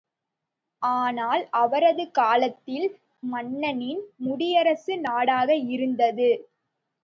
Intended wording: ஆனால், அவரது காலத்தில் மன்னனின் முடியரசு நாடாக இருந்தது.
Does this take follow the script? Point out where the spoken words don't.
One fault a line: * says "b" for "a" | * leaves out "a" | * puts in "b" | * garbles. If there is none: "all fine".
all fine